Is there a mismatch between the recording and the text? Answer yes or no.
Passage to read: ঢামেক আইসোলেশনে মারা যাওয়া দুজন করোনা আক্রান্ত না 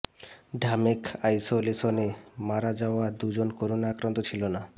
yes